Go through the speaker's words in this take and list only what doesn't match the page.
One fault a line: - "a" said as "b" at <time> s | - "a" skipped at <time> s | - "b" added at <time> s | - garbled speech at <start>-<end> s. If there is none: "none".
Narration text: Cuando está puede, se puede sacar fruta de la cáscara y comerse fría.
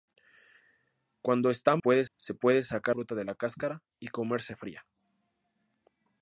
none